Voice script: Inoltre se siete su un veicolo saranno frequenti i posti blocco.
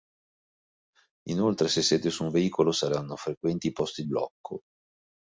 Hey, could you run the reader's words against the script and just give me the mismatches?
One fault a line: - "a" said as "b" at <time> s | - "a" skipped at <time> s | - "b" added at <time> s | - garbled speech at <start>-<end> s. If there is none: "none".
none